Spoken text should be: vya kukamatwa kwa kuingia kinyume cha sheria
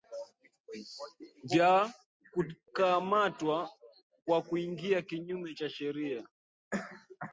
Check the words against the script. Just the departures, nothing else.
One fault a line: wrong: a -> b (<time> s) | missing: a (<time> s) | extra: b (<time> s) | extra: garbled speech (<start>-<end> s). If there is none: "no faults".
no faults